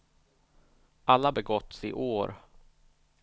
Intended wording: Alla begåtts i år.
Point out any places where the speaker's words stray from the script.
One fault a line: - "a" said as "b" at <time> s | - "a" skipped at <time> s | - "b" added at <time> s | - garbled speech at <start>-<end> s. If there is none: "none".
none